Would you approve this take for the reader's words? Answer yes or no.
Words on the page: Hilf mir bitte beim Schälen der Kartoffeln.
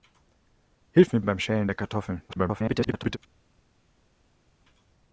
no